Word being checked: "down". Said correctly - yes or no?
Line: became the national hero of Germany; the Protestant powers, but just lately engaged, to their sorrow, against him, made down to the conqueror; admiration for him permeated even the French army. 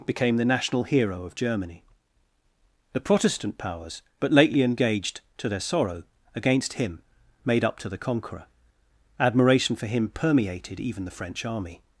no